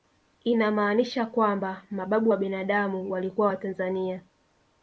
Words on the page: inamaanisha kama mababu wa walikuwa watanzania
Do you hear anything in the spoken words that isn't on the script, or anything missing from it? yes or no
yes